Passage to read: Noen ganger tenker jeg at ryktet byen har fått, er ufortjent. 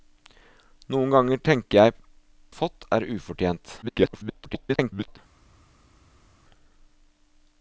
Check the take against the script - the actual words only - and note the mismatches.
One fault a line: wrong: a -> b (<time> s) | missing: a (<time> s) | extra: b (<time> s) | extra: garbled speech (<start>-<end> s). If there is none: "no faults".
missing: at ryktet byen (2.0 s)
extra: garbled speech (3.8-5.2 s)